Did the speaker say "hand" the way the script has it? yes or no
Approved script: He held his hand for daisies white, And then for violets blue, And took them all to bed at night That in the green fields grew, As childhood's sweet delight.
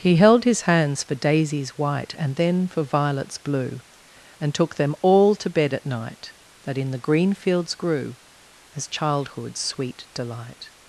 no